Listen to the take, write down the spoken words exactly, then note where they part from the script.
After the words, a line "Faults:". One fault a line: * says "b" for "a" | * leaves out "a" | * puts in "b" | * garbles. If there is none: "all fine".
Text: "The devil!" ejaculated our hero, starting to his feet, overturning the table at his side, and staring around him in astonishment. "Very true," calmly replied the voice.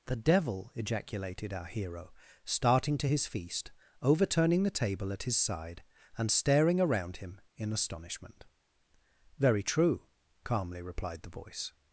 "The devil!" ejaculated our hero, starting to his feast, overturning the table at his side, and staring around him in astonishment. "Very true," calmly replied the voice.
Faults:
* says "feast" for "feet"